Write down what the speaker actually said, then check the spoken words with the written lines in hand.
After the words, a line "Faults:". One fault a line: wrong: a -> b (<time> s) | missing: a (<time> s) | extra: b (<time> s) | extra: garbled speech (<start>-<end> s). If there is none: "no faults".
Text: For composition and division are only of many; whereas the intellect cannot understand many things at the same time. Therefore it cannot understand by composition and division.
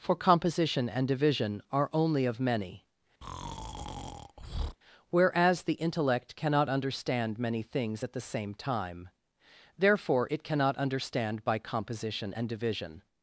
For composition and division are only of many; whereas the intellect cannot understand many things at the same time. Therefore it cannot understand by composition and division.
Faults:
no faults